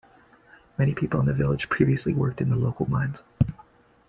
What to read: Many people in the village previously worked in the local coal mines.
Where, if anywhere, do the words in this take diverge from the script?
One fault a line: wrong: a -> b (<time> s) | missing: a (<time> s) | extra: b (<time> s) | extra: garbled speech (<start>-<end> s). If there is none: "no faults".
missing: coal (2.9 s)